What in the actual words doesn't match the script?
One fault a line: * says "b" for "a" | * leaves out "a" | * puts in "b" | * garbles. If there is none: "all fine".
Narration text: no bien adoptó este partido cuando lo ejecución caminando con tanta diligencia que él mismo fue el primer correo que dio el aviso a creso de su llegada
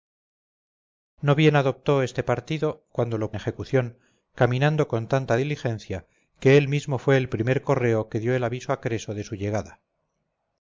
all fine